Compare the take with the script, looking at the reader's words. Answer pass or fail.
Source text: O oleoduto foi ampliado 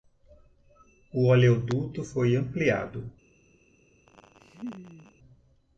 pass